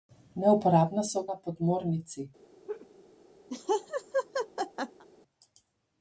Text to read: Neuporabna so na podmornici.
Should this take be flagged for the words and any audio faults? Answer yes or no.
yes